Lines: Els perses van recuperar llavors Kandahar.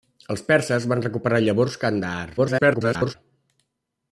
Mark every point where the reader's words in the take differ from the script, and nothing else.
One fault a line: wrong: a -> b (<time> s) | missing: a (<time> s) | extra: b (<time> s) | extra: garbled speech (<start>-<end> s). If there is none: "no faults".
extra: garbled speech (2.4-3.1 s)